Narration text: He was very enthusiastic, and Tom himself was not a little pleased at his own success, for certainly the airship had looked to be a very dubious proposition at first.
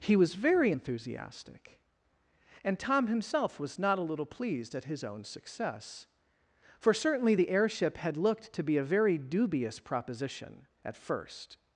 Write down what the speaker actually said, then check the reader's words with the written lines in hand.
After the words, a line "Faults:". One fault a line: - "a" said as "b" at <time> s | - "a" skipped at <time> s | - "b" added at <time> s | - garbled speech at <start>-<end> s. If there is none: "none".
He was very enthusiastic, and Tom himself was not a little pleased at his own success, for certainly the airship had looked to be a very dubious proposition at first.
Faults:
none